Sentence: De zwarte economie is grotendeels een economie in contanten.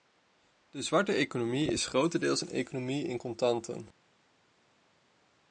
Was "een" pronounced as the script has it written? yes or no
yes